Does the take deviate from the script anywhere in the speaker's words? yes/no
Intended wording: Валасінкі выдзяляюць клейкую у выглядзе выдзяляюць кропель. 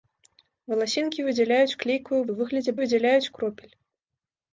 no